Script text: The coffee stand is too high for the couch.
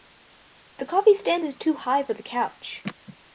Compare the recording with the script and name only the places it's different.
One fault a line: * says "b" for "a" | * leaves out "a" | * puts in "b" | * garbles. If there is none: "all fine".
all fine